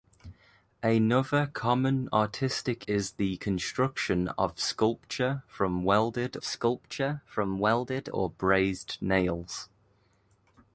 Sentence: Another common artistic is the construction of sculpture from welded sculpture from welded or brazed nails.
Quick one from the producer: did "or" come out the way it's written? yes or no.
yes